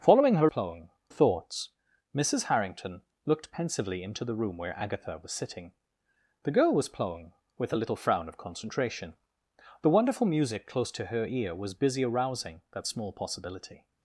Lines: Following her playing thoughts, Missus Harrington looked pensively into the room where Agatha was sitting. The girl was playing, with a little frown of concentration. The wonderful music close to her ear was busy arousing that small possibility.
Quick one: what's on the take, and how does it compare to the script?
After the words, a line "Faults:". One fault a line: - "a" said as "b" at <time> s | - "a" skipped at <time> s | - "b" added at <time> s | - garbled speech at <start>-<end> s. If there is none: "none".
Following her playing thoughts, Missus Harrington looked pensively into the room where Agatha was sitting. The girl was playing, with a little frown of concentration. The wonderful music close to her ear was busy arousing that small possibility.
Faults:
none